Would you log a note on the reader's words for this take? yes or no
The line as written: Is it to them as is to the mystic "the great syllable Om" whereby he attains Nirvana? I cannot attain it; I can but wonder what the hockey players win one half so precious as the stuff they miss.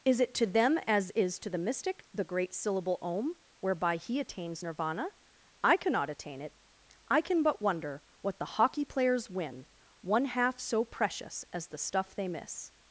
no